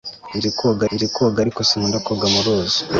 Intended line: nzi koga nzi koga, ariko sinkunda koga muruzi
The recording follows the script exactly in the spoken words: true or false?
true